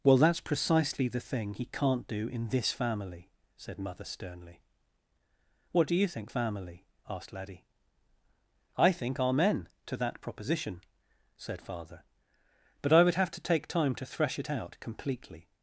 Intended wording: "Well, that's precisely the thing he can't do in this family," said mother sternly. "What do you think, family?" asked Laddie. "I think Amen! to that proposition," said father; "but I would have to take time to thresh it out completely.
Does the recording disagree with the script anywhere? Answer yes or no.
no